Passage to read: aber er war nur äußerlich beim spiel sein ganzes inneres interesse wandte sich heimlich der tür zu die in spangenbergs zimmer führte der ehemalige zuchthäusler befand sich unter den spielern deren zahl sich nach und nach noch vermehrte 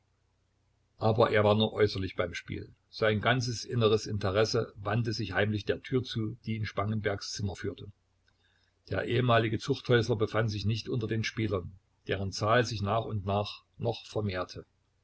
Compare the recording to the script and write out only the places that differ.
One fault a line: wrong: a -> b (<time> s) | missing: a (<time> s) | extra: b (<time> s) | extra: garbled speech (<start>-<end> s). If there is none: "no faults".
extra: nicht (10.6 s)